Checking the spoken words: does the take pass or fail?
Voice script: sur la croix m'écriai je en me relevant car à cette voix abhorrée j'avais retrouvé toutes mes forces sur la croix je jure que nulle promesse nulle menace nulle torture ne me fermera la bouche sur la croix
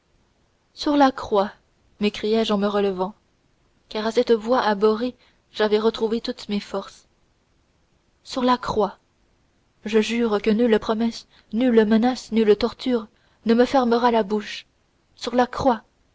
pass